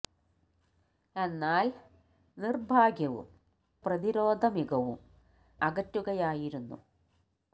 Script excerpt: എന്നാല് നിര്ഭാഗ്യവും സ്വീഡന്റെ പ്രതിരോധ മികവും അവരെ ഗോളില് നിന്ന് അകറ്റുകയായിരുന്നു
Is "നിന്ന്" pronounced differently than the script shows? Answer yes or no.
yes